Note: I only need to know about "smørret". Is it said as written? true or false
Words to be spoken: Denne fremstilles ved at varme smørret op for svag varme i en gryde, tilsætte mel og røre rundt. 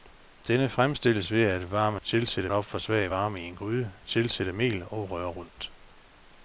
false